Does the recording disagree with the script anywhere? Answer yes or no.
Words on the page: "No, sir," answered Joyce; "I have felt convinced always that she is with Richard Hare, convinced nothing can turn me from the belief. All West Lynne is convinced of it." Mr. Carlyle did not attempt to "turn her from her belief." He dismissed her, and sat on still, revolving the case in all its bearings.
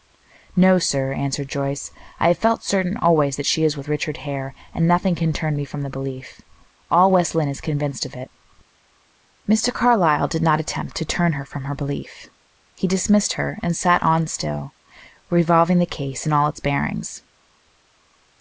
yes